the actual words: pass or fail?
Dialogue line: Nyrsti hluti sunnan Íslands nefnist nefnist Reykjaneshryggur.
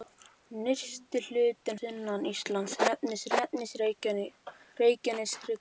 pass